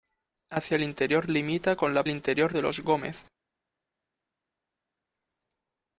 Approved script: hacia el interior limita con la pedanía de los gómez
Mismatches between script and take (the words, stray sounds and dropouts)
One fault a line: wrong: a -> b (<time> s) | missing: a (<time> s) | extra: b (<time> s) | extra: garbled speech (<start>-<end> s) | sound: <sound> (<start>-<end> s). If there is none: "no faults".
wrong: pedanía -> interior (2.1 s)